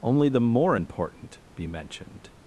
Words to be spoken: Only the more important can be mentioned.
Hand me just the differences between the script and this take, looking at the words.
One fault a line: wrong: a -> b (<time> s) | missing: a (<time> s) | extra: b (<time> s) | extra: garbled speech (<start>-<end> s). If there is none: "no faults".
missing: can (1.4 s)